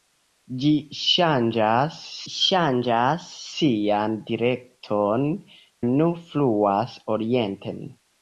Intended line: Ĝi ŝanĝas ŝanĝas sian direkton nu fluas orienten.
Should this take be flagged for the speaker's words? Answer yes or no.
no